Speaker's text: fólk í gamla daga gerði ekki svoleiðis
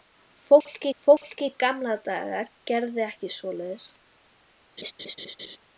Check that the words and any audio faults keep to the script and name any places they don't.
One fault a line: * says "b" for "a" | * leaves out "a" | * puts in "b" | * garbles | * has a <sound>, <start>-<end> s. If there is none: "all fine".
* puts in "fólk"
* has a laugh, 4.8-5.6 s